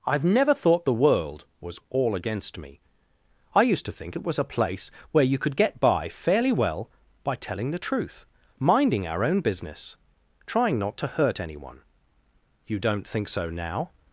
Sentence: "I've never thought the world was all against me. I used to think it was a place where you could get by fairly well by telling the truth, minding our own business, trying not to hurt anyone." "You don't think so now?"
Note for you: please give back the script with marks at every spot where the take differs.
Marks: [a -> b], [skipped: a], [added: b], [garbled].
"I've never thought the world was all against me. I used to think it was a place where you could get by fairly well by telling the truth, minding our own business, trying not to hurt anyone." "You don't think so now?"